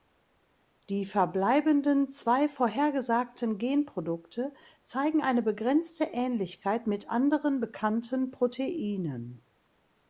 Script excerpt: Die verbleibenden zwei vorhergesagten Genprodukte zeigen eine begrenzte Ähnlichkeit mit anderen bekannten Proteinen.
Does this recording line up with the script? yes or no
yes